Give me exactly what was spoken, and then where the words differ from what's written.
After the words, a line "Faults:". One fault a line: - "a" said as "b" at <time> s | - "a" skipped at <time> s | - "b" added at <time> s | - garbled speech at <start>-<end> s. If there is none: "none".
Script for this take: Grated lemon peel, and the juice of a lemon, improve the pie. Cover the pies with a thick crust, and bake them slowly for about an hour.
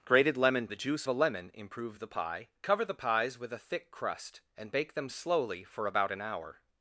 Grated lemon the juice a lemon, improve the pie. Cover the pies with a thick crust, and bake them slowly for about an hour.
Faults:
- "peel and" skipped at 0.7 s
- "of" skipped at 1.1 s